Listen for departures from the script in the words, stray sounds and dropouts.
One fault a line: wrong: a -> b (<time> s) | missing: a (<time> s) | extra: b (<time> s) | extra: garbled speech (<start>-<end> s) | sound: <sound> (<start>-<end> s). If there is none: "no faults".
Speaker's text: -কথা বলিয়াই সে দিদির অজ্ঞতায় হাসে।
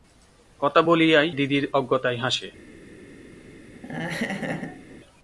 missing: সে (1.3 s)
sound: laugh (3.7-5.0 s)